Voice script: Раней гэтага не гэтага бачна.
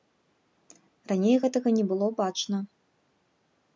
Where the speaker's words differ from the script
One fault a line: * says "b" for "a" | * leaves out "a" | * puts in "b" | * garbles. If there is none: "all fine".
* says "было" for "гэтага"